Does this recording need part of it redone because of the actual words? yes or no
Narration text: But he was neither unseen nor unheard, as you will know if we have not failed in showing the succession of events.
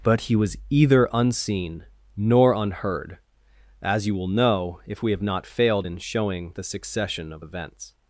yes